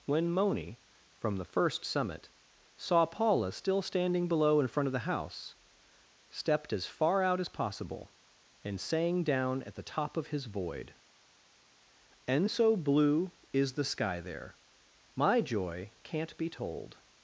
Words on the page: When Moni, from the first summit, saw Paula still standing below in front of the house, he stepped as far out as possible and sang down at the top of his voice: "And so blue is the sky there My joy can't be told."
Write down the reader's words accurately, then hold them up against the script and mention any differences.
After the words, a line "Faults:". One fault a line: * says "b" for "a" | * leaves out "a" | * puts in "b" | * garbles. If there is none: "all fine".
When Moni, from the first summit, saw Paula still standing below in front of the house, stepped as far out as possible and sang down at the top of his void: "And so blue is the sky there My joy can't be told."
Faults:
* leaves out "he"
* says "void" for "voice"